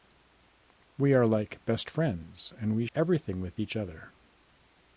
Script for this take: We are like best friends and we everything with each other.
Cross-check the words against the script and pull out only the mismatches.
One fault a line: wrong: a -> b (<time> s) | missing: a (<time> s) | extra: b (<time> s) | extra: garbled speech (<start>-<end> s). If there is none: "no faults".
no faults